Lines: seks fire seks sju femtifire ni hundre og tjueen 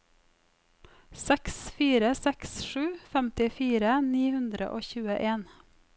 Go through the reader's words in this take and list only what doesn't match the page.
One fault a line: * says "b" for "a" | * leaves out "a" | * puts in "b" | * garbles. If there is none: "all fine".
all fine